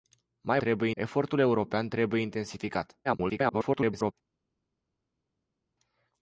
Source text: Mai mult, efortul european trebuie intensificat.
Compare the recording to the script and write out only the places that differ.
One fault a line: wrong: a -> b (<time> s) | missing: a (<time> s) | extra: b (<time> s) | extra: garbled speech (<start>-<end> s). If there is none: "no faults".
wrong: mult -> trebuie (0.6 s)
extra: garbled speech (3.0-4.1 s)